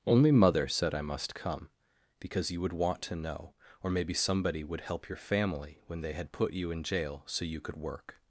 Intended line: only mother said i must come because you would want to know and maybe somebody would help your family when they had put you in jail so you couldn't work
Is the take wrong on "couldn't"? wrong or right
wrong